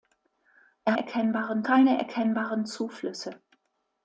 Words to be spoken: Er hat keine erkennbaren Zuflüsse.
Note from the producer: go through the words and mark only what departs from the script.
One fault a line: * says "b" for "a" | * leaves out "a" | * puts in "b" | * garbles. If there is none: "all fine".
* says "erkennbaren" for "hat"